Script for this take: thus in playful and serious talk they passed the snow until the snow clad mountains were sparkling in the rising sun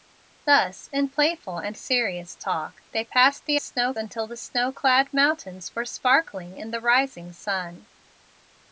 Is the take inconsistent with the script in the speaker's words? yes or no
no